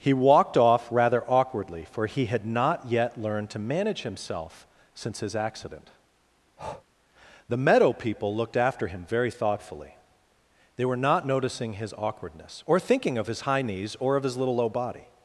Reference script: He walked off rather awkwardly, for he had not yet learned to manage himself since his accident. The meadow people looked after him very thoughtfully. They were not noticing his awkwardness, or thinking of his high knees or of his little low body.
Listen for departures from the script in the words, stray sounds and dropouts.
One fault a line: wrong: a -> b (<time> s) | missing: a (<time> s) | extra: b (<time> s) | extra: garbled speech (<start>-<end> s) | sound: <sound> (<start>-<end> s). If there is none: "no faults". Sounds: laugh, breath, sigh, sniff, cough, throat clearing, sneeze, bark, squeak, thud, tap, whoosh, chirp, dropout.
sound: breath (6.6-6.8 s)